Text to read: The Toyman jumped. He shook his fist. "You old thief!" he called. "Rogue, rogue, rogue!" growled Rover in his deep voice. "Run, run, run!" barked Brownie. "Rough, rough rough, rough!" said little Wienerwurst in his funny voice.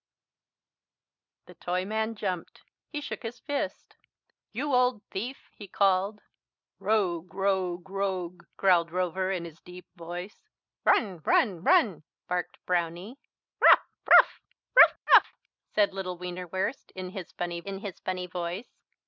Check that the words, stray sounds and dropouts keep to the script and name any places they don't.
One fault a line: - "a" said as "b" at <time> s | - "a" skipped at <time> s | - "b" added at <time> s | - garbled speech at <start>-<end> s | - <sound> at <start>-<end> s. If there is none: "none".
- "in his funny" added at 17.6 s